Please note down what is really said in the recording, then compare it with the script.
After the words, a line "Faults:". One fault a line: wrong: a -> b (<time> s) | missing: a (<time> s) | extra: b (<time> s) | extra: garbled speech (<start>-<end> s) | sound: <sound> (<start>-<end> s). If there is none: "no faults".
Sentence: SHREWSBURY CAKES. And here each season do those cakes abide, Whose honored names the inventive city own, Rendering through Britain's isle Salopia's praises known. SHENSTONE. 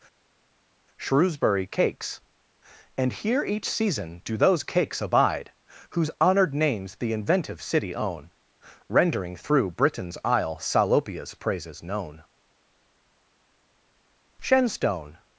SHREWSBURY CAKES. And here each season do those cakes abide, Whose honored names the inventive city own, Rendering through Britain's isle Salopia's praises known. SHENSTONE.
Faults:
no faults